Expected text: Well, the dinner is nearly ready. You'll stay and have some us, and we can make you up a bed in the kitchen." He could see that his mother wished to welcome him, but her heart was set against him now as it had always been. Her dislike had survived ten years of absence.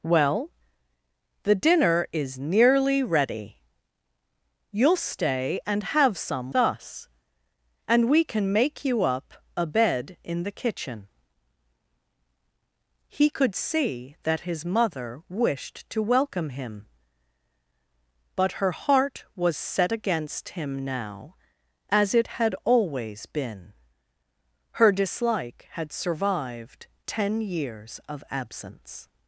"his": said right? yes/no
yes